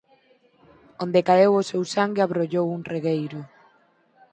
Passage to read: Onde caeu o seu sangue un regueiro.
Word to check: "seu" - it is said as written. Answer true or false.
true